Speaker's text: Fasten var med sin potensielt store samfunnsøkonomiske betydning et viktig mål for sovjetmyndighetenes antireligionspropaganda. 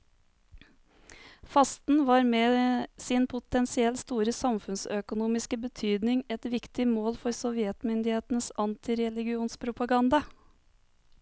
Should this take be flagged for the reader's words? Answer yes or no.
no